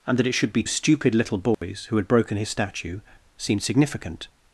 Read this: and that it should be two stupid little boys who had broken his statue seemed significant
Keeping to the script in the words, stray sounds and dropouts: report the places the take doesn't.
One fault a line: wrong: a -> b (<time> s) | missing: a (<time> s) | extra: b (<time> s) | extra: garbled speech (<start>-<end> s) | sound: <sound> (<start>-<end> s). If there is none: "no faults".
missing: two (0.6 s)
sound: dropout (1.5-1.6 s)